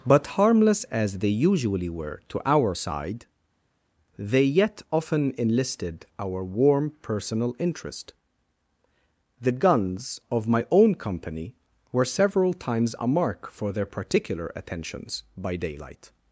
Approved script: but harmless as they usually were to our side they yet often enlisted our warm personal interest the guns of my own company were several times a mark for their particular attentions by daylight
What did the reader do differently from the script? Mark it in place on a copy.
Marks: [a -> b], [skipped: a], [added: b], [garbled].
but harmless as they usually were to our side they yet often enlisted our warm personal interest the guns of my own company were several times a mark for their particular attentions by daylight